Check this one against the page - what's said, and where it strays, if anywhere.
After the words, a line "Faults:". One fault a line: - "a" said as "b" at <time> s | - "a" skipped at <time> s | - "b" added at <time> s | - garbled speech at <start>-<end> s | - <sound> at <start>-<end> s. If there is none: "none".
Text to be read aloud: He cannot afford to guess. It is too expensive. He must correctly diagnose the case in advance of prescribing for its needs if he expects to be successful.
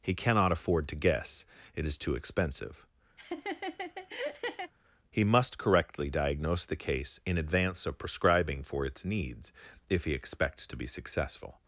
He cannot afford to guess. It is too expensive. He must correctly diagnose the case in advance of prescribing for its needs if he expects to be successful.
Faults:
- laugh at 3.2-4.7 s